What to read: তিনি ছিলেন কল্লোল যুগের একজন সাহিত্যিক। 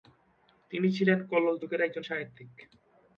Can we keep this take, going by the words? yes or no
yes